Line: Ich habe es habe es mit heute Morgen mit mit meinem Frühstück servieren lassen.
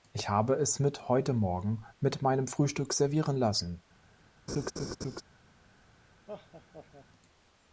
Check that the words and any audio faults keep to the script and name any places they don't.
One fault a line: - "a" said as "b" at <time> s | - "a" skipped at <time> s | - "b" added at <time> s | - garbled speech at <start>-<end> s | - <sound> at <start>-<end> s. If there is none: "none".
- "habe es" skipped at 0.8 s
- "mit" skipped at 2.2 s
- laugh at 4.5-5.2 s
- laugh at 6.3-7.1 s